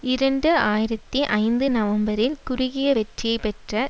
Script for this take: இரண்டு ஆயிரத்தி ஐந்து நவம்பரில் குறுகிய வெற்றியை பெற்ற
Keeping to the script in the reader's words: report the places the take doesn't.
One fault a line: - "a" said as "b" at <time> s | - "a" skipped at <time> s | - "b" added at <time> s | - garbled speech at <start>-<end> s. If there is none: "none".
none